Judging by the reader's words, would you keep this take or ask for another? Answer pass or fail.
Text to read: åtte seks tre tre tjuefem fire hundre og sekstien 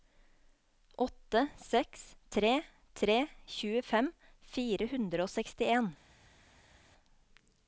pass